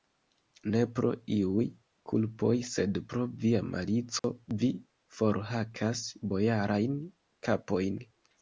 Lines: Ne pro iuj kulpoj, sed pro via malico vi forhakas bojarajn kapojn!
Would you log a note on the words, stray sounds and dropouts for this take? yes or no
yes